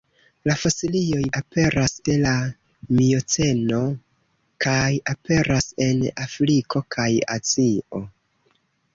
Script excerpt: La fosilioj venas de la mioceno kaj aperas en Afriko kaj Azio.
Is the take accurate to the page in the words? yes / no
no